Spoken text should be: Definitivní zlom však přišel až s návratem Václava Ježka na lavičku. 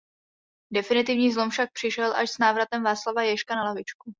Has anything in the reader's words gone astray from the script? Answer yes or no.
no